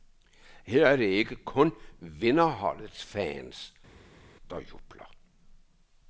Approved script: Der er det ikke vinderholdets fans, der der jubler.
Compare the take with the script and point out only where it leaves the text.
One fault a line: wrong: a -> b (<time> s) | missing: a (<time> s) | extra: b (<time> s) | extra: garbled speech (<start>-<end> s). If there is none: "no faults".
wrong: Der -> Her (0.7 s)
extra: kun (1.4 s)
missing: der (4.6 s)